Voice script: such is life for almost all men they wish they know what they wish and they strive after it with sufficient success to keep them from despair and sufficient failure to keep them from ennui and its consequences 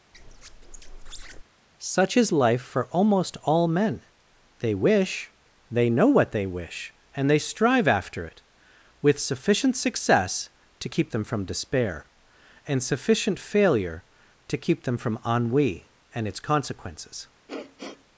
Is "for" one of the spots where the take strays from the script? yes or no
no